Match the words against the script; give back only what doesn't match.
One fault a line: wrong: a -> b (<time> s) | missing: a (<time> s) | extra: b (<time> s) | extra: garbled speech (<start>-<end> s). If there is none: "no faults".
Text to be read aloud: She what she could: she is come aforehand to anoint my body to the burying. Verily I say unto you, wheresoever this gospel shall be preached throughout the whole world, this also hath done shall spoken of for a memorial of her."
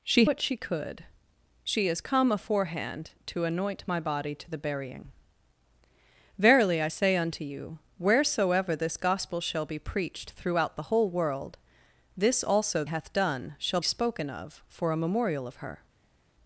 no faults